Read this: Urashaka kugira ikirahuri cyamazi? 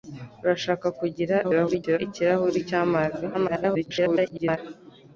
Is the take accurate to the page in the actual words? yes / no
no